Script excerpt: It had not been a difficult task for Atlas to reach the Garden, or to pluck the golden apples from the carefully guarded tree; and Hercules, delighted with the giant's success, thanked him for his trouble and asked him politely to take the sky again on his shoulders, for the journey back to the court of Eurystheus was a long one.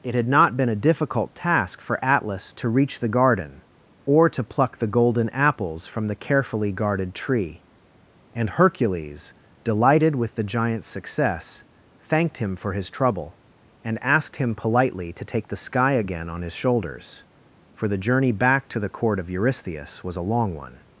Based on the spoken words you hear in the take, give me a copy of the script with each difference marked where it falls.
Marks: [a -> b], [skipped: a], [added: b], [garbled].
It had not been a difficult task for Atlas to reach the Garden, or to pluck the golden apples from the carefully guarded tree; and Hercules, delighted with the giant's success, thanked him for his trouble and asked him politely to take the sky again on his shoulders, for the journey back to the court of Eurystheus was a long one.